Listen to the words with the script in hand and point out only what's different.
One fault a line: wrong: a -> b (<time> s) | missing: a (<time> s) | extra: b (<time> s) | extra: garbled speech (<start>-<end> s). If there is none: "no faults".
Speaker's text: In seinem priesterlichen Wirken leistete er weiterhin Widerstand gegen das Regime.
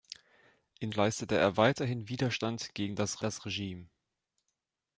missing: seinem priesterlichen Wirken (0.9 s)
extra: das (3.2 s)